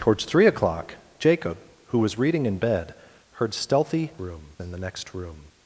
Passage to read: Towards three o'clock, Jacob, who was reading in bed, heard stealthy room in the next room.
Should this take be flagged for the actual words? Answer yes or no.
no